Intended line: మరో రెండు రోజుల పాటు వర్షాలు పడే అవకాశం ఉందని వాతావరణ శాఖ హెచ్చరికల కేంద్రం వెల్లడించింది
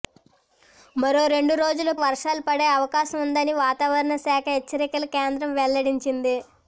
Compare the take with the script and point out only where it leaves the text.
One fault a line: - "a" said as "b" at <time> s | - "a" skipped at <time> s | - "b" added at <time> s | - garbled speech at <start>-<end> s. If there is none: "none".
- "పాటు" skipped at 1.9 s